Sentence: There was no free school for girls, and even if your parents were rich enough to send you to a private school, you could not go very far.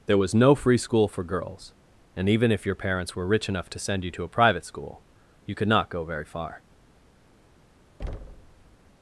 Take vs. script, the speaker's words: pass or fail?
pass